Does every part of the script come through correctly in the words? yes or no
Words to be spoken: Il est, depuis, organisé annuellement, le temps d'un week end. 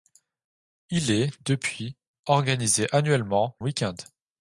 no